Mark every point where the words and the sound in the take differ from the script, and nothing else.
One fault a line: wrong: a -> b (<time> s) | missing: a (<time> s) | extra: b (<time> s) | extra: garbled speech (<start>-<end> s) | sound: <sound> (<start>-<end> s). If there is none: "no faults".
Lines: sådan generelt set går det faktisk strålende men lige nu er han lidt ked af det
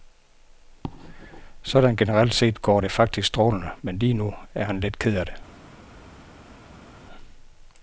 no faults